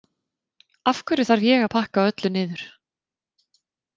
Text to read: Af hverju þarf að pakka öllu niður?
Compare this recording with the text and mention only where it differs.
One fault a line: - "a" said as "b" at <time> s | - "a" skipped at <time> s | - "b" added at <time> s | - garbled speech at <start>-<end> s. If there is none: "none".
- "ég" added at 1.5 s